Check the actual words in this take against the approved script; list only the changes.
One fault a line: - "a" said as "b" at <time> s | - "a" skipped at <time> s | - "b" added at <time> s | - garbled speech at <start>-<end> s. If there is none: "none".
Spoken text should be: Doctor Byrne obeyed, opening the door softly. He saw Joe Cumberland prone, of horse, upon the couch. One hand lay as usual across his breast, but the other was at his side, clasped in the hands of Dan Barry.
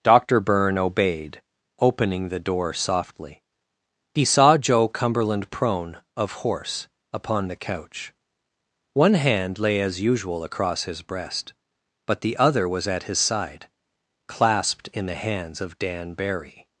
none